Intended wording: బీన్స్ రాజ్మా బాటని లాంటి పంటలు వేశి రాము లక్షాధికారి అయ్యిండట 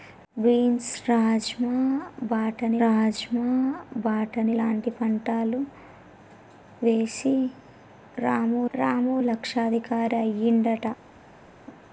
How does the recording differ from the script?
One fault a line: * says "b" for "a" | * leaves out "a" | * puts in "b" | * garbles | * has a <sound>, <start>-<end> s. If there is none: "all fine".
* puts in "రాజ్మా బాటని"
* puts in "రాము"